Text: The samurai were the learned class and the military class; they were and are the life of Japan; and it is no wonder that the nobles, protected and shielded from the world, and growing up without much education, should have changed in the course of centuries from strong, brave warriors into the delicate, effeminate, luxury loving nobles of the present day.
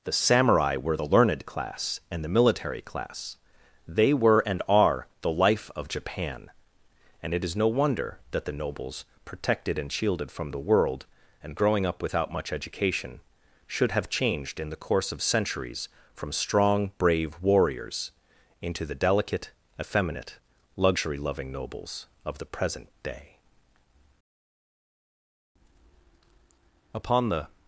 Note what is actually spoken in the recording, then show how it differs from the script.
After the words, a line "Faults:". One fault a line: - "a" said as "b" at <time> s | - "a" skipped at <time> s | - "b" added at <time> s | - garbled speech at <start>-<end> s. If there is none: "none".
The samurai were the learned class and the military class; they were and are the life of Japan; and it is no wonder that the nobles, protected and shielded from the world, and growing up without much education, should have changed in the course of centuries from strong, brave warriors into the delicate, effeminate, luxury loving nobles of the present day. Upon the
Faults:
- "Upon the" added at 26.9 s